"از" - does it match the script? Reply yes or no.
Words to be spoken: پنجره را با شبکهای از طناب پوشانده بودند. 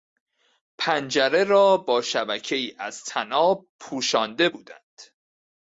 yes